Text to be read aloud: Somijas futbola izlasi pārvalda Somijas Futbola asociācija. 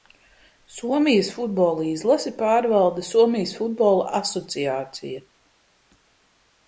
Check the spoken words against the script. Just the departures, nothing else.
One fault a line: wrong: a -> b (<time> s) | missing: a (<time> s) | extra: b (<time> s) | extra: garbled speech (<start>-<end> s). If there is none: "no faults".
no faults